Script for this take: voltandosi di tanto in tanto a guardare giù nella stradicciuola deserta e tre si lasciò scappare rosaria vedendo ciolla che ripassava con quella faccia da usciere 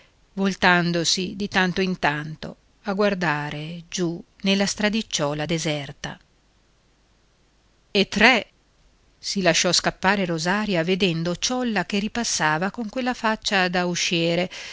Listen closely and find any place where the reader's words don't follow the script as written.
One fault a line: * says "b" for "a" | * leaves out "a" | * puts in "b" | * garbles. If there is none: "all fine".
all fine